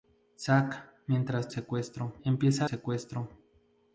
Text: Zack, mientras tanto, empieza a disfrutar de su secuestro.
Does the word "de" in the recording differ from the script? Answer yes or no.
yes